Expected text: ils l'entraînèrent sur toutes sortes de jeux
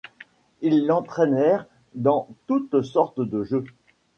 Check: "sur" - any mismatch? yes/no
yes